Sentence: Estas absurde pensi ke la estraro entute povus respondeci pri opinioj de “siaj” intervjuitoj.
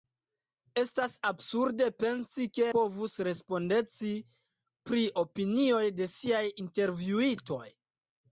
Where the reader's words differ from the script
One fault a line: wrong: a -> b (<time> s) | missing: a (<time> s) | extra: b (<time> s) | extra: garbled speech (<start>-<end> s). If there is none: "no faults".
missing: la estraro entute (2.7 s)